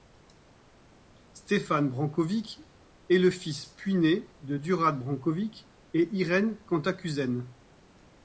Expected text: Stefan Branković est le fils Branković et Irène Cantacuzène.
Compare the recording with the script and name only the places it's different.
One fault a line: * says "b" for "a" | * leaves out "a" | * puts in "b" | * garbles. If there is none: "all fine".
* puts in "puiné de Đurađ"